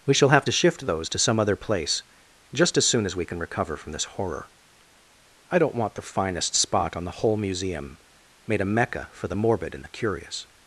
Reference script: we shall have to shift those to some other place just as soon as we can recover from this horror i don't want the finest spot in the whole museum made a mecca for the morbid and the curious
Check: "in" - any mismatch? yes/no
yes